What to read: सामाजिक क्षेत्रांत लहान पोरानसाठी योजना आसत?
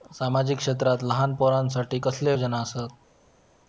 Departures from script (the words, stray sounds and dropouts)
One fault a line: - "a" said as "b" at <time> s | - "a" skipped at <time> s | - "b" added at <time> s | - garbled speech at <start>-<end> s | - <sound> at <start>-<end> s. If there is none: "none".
- "कसले" added at 2.0 s